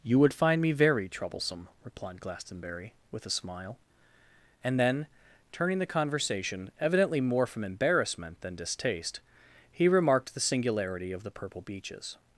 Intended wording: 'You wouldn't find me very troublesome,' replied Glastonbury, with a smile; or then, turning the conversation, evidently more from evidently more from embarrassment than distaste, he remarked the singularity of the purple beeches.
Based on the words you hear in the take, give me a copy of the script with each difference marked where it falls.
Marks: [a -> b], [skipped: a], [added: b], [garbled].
'You [wouldn't -> would] find me very troublesome,' replied Glastonbury, with a smile; [or -> and] then, turning the conversation, evidently more from [skipped: evidently more from] embarrassment than distaste, he remarked the singularity of the purple beeches.